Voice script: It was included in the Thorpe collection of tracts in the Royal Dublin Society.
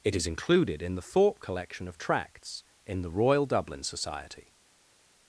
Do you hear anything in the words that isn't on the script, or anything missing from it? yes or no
yes